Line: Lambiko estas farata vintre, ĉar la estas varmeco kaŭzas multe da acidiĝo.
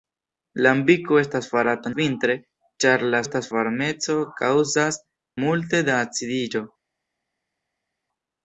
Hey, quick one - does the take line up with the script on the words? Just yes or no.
yes